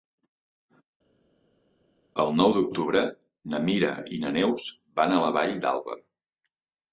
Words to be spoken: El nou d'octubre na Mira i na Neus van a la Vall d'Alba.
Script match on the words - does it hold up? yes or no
yes